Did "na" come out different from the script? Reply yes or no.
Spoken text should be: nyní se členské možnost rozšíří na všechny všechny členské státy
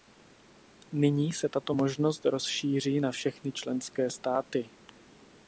no